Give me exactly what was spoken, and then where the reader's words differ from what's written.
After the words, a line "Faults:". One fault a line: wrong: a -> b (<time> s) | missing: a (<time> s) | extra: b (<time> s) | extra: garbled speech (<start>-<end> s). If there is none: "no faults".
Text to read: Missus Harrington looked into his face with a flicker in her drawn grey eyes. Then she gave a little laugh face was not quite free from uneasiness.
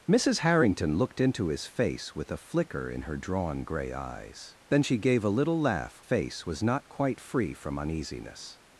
Missus Harrington looked into his face with a flicker in her drawn grey eyes. Then she gave a little laugh face was not quite free from uneasiness.
Faults:
no faults